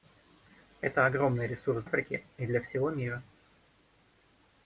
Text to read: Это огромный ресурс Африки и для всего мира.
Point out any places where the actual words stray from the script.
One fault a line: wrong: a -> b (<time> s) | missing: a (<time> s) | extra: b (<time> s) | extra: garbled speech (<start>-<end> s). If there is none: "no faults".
no faults